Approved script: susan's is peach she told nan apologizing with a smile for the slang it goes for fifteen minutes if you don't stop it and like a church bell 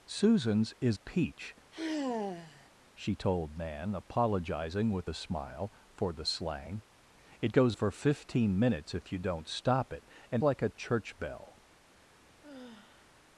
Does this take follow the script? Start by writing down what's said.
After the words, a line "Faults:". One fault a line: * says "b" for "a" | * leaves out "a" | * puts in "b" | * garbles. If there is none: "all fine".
susan's is peach she told nan apologizing with a smile for the slang it goes for fifteen minutes if you don't stop it and like a church bell
Faults:
all fine